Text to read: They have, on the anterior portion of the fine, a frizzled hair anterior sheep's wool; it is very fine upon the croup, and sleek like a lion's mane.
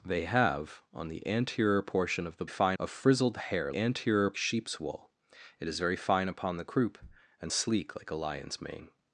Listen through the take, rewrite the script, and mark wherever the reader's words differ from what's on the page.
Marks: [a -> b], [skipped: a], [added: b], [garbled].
They have, on the anterior portion of the fine, a frizzled hair anterior sheep's wool; it is very fine upon the croup, and sleek like a lion's mane.